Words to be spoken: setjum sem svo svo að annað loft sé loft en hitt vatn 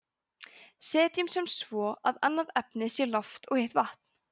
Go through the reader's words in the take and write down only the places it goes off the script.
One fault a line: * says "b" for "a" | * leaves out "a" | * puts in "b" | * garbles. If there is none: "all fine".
* leaves out "svo"
* says "efnið" for "loft"
* says "og" for "en"